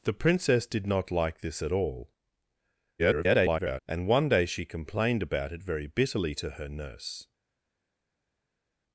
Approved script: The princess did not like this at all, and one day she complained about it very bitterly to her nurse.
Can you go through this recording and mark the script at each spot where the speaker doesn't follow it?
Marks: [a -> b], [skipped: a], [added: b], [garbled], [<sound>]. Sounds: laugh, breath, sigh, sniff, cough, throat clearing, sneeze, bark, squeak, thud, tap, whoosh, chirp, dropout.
The princess did not like this at all, [garbled] and one day she complained about it very bitterly to her nurse.